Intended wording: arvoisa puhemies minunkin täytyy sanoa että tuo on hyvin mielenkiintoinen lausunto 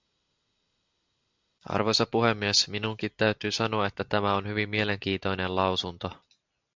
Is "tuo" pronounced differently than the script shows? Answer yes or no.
yes